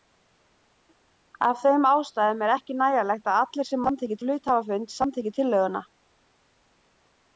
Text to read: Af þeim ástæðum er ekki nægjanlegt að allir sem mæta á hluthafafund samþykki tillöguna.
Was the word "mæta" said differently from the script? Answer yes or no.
yes